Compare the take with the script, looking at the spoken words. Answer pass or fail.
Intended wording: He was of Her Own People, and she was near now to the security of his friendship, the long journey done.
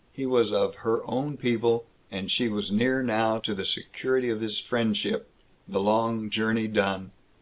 pass